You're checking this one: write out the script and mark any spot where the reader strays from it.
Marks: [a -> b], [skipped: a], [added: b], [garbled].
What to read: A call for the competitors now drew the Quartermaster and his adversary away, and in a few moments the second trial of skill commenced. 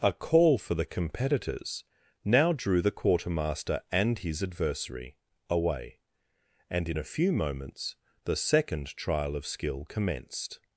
A call for the competitors now drew the Quartermaster and his adversary away, and in a few moments the second trial of skill commenced.